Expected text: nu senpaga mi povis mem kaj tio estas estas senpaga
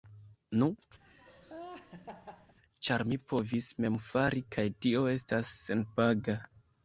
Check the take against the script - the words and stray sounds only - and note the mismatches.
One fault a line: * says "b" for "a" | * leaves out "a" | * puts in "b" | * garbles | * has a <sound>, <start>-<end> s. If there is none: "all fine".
* has a laugh, 1.0-2.5 s
* says "ĉar" for "senpaga"
* puts in "fari"
* leaves out "estas"